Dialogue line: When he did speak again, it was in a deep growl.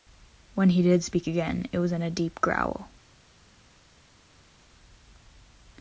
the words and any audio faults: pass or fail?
pass